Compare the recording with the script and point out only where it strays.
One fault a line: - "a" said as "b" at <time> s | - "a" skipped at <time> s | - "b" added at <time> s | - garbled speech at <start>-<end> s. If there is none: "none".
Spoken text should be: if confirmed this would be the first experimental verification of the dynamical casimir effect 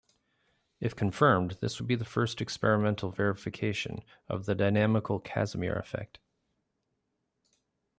none